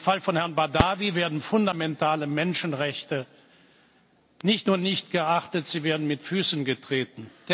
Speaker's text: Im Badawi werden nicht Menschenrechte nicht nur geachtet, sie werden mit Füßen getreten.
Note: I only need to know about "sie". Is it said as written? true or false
true